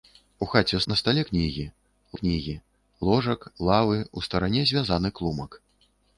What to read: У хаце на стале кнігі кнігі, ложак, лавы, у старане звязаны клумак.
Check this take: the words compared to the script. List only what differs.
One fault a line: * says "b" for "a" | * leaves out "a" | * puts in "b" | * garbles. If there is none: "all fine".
all fine